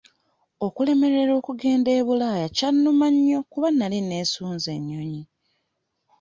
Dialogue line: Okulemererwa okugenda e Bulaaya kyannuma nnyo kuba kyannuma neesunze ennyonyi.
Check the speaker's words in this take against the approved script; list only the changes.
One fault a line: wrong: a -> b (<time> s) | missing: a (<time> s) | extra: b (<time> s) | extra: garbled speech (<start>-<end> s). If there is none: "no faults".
wrong: kyannuma -> nali (3.7 s)